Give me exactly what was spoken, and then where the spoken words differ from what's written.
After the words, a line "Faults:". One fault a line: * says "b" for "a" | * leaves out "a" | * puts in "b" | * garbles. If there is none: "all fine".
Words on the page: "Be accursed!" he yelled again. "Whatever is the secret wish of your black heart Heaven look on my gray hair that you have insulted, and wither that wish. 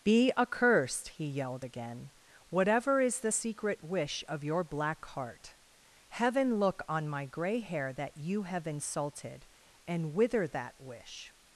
"Be accursed!" he yelled again. "Whatever is the secret wish of your black heart Heaven look on my gray hair that you have insulted, and wither that wish.
Faults:
all fine